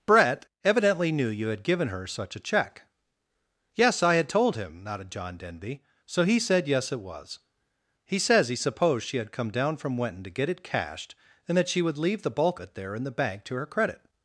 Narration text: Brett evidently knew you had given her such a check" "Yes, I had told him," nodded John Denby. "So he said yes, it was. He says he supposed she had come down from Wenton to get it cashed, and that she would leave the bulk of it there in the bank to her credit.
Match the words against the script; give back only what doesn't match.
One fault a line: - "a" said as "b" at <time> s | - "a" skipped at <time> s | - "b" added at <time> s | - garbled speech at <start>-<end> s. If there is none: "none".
- "of" skipped at 12.6 s